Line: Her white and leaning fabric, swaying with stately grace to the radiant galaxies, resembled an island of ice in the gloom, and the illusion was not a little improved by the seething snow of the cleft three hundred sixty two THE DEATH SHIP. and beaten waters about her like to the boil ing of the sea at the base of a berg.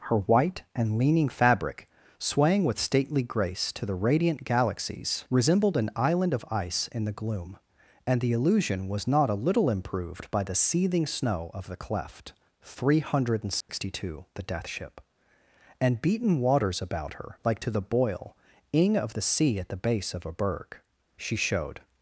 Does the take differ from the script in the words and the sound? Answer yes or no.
yes